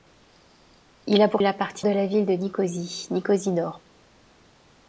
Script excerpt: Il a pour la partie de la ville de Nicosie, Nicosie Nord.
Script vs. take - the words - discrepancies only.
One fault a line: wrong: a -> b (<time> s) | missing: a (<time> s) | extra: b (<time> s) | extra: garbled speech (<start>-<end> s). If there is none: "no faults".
no faults